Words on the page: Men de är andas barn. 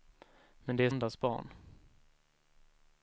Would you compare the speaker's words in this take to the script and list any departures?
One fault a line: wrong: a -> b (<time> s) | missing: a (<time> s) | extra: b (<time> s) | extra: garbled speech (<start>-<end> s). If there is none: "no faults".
no faults